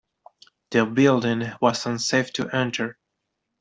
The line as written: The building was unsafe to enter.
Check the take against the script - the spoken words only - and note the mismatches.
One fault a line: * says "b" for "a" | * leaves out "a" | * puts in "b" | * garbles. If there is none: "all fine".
all fine